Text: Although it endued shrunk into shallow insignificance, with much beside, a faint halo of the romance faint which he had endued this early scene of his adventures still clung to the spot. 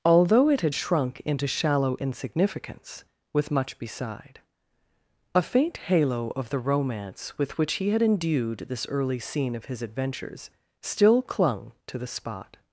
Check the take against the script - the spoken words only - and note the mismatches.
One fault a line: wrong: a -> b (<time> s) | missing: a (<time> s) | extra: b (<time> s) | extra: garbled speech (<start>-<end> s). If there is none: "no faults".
wrong: endued -> had (0.6 s)
wrong: faint -> with (7.4 s)